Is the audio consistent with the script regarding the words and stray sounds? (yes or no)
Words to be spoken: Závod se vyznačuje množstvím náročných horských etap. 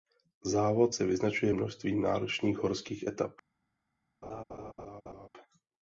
no